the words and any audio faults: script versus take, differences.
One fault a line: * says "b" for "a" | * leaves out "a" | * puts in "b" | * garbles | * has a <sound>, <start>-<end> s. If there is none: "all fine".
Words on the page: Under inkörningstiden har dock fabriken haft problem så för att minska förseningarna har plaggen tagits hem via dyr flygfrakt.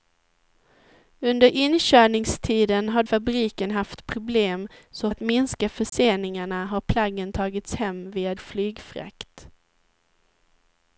* leaves out "dock"
* leaves out "för"
* has a dropout, 5.9-5.9 s
* leaves out "dyr"